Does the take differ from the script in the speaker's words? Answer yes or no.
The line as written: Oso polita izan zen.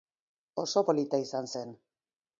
no